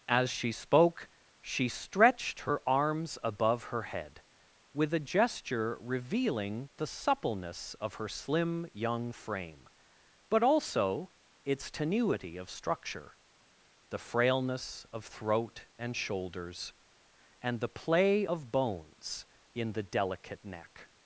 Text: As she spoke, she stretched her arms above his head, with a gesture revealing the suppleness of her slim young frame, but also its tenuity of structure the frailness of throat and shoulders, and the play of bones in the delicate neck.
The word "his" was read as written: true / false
false